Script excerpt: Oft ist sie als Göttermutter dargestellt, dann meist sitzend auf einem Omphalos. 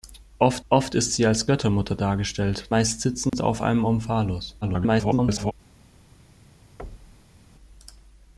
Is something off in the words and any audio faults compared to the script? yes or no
yes